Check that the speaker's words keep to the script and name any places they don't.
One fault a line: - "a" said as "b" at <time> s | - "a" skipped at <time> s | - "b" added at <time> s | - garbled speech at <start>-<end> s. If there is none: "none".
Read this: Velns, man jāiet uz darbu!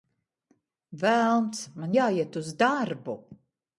none